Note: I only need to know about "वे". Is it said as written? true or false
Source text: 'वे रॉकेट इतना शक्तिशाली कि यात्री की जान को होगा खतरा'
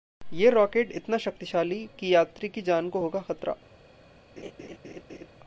false